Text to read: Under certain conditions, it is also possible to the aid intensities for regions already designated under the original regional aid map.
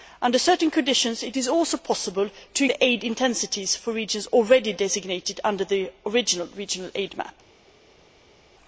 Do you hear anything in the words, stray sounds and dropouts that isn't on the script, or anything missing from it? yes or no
no